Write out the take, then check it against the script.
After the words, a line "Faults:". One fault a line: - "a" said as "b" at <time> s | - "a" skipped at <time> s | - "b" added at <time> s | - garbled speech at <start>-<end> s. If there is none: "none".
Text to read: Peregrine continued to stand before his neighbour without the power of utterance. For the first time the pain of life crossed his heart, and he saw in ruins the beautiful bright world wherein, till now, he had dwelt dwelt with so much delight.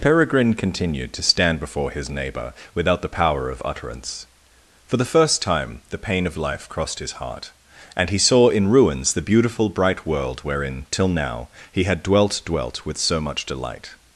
Peregrine continued to stand before his neighbour without the power of utterance. For the first time the pain of life crossed his heart, and he saw in ruins the beautiful bright world wherein, till now, he had dwelt dwelt with so much delight.
Faults:
none